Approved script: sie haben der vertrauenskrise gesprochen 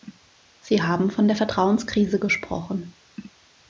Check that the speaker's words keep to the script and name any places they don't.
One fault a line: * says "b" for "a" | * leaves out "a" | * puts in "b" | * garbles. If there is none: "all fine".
* puts in "von"